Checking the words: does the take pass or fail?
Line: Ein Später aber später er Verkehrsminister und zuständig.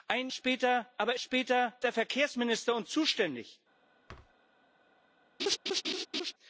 pass